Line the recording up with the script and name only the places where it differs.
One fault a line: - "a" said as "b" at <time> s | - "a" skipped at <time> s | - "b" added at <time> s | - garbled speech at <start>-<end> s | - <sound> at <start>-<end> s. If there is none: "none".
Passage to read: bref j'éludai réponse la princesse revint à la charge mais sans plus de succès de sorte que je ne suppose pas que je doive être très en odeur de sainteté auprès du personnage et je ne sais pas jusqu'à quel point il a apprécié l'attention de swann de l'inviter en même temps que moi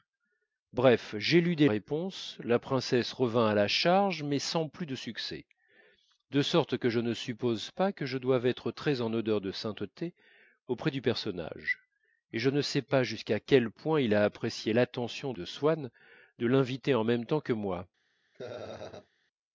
- laugh at 18.3-19.1 s